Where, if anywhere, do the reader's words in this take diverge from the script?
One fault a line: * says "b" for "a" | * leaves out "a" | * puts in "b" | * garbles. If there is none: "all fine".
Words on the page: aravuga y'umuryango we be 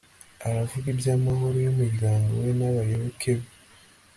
* puts in "iby'amahoro"
* puts in "n'abayoboke"